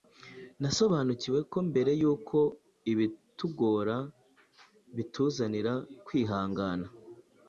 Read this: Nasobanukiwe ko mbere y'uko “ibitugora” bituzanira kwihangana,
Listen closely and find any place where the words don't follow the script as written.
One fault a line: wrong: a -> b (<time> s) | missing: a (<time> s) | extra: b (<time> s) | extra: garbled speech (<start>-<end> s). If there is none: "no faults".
no faults